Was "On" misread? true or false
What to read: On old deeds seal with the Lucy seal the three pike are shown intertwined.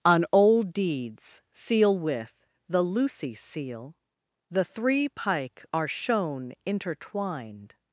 false